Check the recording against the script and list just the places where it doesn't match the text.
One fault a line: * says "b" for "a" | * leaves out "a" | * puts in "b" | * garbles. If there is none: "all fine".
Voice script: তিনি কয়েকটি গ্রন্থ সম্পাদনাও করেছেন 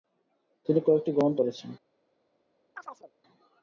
* leaves out "সম্পাদনাও"